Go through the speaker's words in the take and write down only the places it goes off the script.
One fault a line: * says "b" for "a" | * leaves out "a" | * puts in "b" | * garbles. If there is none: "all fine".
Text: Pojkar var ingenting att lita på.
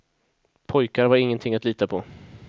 all fine